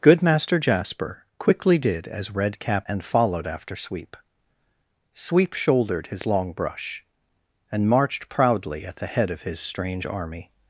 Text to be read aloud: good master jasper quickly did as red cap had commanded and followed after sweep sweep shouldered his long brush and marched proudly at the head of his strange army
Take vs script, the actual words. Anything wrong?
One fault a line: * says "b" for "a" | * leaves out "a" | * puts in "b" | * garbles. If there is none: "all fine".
* leaves out "had commanded"